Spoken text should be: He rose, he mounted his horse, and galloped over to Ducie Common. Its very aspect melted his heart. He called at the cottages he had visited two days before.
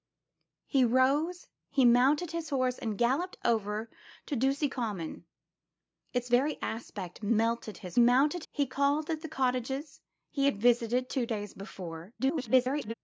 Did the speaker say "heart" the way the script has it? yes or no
no